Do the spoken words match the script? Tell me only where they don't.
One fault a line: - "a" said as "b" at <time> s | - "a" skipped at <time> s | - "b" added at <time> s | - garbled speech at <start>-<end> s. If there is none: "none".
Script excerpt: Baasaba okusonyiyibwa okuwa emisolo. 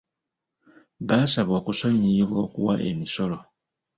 none